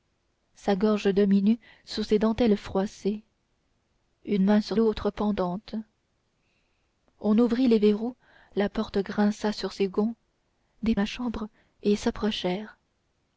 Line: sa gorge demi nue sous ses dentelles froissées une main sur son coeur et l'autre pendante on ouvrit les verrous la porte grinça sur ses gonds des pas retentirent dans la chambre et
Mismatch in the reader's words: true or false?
true